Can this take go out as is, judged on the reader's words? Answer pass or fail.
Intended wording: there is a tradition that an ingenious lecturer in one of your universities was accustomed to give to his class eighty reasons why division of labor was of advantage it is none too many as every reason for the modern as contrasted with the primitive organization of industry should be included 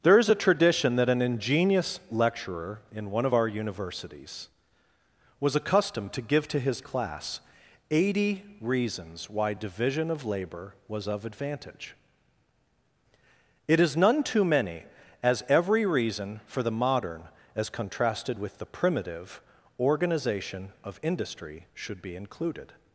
fail